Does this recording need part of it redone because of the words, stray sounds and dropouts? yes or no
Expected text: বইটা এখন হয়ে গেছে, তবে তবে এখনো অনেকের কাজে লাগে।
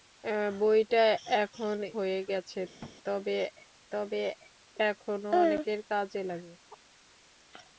yes